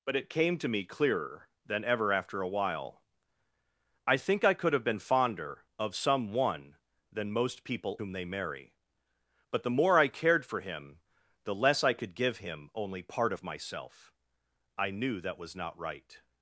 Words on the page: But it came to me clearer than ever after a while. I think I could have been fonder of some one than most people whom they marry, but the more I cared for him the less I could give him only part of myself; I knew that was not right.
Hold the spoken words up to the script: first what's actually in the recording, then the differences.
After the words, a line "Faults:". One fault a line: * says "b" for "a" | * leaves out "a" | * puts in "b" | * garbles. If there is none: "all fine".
But it came to me clearer than ever after a while. I think I could have been fonder of some one than most people whom they marry, but the more I cared for him the less I could give him only part of myself; I knew that was not right.
Faults:
all fine